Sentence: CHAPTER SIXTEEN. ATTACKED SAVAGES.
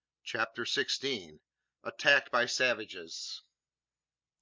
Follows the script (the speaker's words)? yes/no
no